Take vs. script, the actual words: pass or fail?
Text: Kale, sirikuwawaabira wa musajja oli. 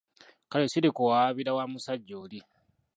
pass